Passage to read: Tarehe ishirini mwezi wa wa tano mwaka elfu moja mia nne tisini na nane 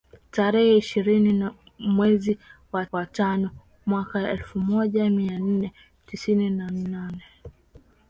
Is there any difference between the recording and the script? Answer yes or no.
no